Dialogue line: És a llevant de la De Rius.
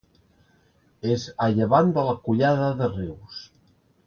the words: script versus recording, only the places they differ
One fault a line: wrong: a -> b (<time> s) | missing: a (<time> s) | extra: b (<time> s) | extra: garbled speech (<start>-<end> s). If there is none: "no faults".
extra: Collada (2.3 s)